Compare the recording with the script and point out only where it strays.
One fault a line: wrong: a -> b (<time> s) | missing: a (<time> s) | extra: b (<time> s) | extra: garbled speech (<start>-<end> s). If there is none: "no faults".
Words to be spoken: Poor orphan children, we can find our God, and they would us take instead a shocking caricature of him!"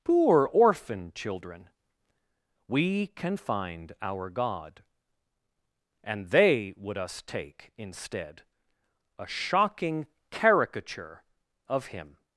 no faults